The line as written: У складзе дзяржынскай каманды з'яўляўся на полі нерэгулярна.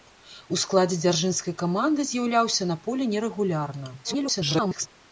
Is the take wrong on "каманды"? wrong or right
right